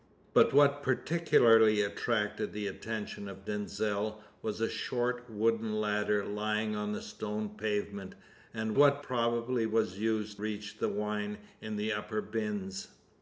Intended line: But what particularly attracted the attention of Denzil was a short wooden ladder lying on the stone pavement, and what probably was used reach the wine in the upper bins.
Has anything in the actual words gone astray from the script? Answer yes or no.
no